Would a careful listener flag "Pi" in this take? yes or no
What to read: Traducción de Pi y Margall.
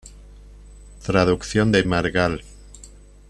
yes